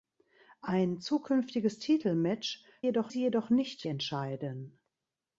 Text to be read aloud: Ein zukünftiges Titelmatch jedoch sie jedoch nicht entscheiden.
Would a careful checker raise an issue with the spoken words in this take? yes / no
no